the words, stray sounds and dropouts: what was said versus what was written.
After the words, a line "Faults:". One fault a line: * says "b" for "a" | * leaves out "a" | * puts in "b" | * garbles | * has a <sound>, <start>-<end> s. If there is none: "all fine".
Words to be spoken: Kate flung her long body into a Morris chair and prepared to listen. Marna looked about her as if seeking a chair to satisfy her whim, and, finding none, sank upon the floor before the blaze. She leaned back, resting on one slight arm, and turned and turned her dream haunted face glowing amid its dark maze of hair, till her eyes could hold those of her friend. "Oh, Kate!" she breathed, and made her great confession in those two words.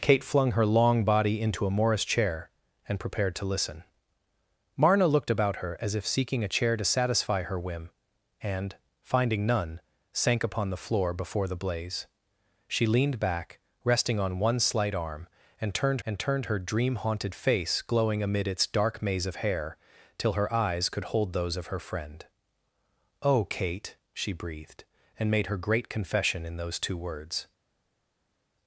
Kate flung her long body into a Morris chair and prepared to listen. Marna looked about her as if seeking a chair to satisfy her whim, and, finding none, sank upon the floor before the blaze. She leaned back, resting on one slight arm, and turned and turned her dream haunted face glowing amid its dark maze of hair, till her eyes could hold those of her friend. "Oh, Kate!" she breathed, and made her great confession in those two words.
Faults:
all fine